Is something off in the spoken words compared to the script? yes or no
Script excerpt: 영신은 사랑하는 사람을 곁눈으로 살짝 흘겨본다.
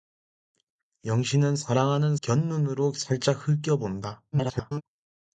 yes